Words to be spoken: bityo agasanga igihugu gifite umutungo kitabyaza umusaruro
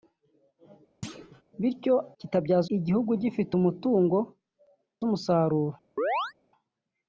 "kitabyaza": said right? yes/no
no